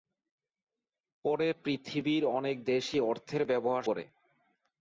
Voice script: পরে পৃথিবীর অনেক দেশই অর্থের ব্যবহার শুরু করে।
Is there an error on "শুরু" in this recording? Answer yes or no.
yes